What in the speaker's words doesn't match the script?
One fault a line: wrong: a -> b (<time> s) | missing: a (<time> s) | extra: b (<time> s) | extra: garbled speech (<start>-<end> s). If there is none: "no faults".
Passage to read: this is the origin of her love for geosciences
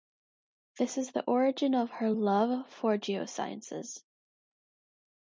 no faults